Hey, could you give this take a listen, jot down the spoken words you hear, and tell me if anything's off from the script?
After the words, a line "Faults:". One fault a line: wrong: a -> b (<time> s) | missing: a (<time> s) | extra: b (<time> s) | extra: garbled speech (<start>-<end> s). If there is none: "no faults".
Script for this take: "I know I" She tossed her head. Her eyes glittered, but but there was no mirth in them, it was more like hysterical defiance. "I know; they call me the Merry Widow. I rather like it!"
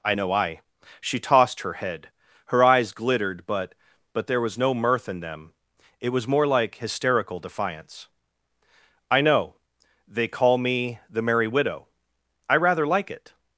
"I know I" She tossed her head. Her eyes glittered, but but there was no mirth in them, it was more like hysterical defiance. "I know; they call me the Merry Widow. I rather like it!"
Faults:
no faults